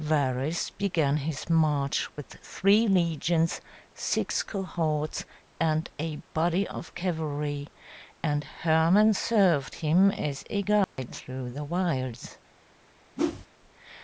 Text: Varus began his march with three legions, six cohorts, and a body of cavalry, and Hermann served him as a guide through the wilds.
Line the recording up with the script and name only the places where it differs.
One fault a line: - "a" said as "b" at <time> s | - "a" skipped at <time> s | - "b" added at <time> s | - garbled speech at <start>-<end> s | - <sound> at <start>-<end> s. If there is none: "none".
- dropout at 10.8-11.0 s
- whoosh at 13.2-13.5 s